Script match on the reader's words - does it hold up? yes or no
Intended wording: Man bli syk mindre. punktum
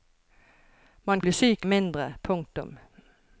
yes